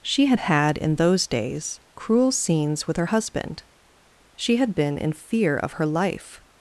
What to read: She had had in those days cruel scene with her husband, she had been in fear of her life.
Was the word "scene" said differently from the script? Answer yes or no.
yes